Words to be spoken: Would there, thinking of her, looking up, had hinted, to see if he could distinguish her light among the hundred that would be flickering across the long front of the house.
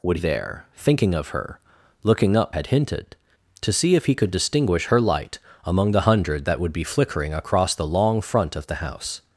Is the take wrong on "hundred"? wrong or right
right